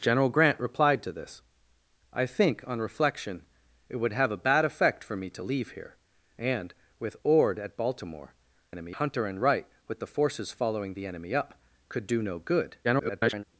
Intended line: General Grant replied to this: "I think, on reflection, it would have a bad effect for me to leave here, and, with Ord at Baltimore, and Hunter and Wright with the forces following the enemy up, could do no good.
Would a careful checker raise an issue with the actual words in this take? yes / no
yes